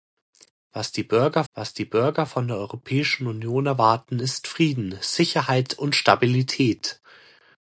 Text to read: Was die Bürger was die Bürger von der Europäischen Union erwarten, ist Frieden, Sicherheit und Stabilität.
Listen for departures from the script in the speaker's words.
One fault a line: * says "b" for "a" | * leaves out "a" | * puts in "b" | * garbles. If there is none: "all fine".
all fine